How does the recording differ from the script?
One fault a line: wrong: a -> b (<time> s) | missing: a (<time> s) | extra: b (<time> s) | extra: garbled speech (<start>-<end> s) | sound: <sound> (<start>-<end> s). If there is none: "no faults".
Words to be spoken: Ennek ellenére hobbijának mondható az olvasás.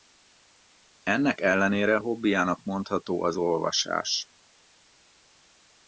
no faults